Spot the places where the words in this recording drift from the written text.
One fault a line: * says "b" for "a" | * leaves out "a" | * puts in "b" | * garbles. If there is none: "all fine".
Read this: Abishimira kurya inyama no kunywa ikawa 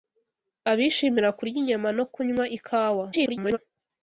* garbles